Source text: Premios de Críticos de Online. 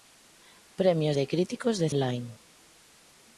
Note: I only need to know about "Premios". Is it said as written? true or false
true